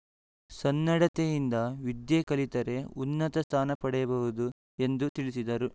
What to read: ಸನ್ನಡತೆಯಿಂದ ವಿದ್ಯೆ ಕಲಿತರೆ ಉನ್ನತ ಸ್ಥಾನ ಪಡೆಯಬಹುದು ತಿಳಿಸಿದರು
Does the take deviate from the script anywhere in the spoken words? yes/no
yes